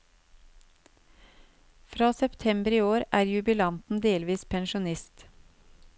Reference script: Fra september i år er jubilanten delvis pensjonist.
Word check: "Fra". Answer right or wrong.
right